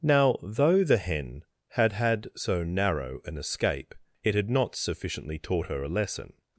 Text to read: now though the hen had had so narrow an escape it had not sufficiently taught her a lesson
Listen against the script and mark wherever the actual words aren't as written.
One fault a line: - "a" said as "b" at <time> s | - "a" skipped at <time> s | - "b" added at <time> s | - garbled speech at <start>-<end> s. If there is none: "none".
none